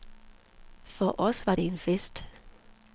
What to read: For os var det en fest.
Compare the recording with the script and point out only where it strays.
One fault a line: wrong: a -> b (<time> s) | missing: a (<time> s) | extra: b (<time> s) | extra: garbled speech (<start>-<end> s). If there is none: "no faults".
no faults